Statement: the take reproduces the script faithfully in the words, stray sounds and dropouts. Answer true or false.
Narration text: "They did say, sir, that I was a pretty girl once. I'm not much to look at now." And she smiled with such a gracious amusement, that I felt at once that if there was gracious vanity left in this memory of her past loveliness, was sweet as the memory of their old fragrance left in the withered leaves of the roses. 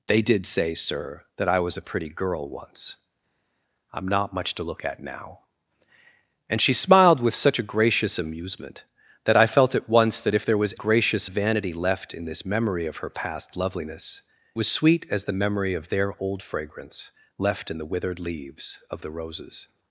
true